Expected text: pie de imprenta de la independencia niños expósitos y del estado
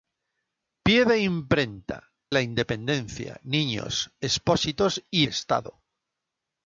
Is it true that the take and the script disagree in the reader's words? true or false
true